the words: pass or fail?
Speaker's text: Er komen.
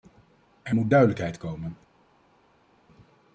fail